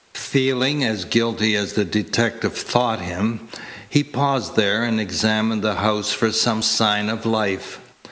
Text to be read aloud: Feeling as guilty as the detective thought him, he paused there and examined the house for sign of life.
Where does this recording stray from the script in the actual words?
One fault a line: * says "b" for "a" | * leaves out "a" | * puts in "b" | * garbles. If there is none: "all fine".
* puts in "some"